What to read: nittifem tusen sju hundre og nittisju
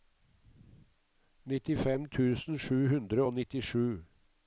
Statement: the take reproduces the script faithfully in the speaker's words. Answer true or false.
true